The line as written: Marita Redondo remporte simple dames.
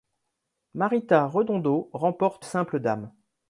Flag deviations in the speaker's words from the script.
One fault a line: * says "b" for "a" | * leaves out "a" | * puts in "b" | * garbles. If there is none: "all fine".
all fine